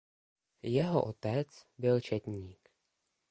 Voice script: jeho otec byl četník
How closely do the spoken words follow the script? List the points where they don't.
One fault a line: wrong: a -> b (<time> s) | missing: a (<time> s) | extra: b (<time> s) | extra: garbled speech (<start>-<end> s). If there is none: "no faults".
no faults